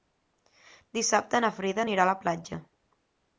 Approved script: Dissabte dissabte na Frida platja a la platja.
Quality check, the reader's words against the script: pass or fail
fail